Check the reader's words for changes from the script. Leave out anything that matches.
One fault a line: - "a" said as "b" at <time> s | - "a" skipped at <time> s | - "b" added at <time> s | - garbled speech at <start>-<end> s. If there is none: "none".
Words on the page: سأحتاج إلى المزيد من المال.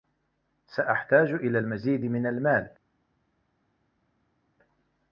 none